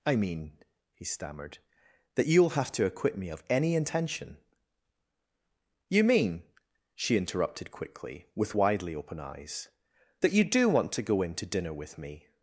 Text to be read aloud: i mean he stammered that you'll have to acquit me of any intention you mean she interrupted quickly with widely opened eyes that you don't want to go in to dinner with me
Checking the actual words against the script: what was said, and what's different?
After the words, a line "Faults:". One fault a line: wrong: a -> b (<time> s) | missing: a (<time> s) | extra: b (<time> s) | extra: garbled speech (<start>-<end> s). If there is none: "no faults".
i mean he stammered that you'll have to acquit me of any intention you mean she interrupted quickly with widely open eyes that you do want to go in to dinner with me
Faults:
wrong: opened -> open (8.9 s)
wrong: don't -> do (10.4 s)